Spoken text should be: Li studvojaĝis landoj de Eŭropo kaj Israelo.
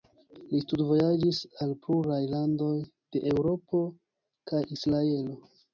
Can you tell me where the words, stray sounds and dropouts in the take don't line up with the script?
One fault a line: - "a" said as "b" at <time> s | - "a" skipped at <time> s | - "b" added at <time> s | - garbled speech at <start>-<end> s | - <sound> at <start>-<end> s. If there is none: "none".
- "al pluraj" added at 1.6 s